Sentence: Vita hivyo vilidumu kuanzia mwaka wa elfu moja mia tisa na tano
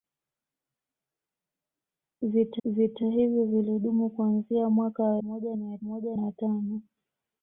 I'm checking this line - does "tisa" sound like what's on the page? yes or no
no